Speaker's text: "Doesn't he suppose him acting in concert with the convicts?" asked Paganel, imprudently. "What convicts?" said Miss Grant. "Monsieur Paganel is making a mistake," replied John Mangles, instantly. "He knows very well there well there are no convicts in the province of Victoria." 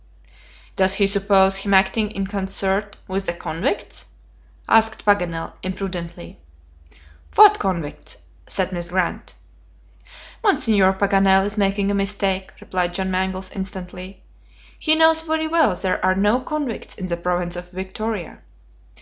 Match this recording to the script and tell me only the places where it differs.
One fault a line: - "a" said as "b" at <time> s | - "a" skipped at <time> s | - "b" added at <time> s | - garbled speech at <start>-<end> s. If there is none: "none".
- "Doesn't" said as "Does" at 0.8 s
- "well there" skipped at 16.0 s